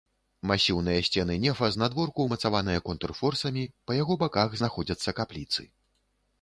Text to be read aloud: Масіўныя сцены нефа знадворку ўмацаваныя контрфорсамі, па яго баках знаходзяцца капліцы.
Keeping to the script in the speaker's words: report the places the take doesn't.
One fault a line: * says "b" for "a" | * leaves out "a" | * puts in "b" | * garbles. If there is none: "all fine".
all fine